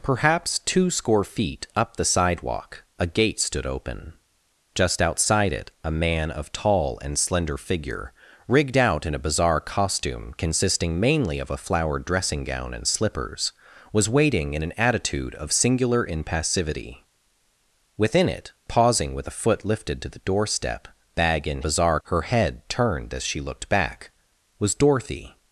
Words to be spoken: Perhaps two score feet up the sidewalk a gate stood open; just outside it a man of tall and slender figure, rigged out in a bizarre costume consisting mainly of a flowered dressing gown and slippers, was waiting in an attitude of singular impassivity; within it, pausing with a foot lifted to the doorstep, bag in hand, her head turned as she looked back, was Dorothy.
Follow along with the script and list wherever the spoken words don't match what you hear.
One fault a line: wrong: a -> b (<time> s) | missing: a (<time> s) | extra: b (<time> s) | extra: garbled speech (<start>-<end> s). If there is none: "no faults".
wrong: hand -> bizarre (21.6 s)